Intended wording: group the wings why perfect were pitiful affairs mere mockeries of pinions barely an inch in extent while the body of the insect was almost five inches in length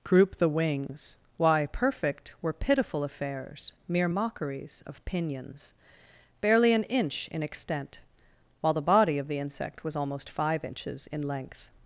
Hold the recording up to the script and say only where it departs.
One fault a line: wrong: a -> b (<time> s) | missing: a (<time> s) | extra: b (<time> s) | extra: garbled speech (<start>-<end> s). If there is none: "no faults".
no faults